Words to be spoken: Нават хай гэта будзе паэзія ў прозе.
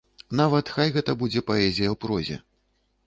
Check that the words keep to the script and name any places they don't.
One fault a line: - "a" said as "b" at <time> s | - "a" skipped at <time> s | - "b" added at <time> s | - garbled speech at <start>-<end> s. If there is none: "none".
none